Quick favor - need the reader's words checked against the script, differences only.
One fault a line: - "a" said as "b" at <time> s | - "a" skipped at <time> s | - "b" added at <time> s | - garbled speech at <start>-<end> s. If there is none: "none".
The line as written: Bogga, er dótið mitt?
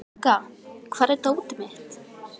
- "hvar" added at 0.9 s